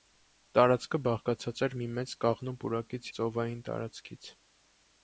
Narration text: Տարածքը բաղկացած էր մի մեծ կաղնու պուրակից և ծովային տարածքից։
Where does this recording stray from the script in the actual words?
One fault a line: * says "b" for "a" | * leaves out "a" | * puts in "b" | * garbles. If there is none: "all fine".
* leaves out "և"